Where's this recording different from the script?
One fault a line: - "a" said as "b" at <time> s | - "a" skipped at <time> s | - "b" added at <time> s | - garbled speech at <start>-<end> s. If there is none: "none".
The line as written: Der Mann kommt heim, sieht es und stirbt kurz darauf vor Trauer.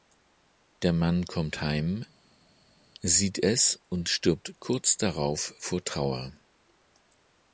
none